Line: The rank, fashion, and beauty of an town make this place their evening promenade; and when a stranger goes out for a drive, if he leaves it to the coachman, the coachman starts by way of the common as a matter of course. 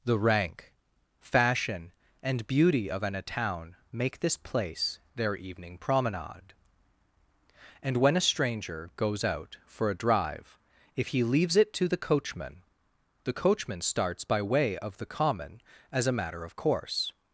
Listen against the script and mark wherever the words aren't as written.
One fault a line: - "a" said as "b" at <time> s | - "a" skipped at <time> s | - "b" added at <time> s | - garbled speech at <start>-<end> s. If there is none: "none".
none